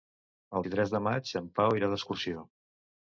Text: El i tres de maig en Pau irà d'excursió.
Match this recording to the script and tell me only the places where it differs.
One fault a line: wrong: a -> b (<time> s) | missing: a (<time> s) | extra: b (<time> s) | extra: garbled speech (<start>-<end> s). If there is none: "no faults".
no faults